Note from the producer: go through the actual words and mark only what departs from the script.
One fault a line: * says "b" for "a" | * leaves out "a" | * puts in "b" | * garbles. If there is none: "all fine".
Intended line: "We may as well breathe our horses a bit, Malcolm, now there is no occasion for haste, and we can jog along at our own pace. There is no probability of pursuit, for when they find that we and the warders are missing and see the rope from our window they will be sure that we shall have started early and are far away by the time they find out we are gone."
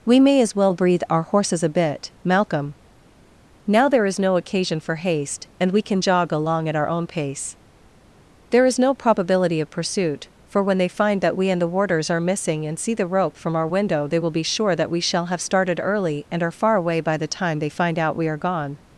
all fine